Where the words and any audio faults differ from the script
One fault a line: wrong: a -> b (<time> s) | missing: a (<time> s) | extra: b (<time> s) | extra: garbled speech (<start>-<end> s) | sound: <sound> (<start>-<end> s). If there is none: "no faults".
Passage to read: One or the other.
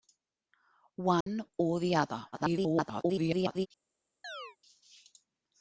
sound: dropout (1.2-1.3 s)
extra: garbled speech (2.3-3.7 s)
sound: chirp (4.2-4.6 s)